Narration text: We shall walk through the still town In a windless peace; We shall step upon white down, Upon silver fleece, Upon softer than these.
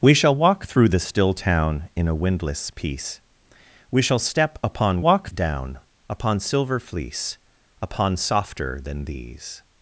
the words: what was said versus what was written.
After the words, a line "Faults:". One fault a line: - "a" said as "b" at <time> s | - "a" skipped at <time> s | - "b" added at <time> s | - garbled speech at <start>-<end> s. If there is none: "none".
We shall walk through the still town In a windless peace; We shall step upon walk down, Upon silver fleece, Upon softer than these.
Faults:
- "white" said as "walk" at 5.0 s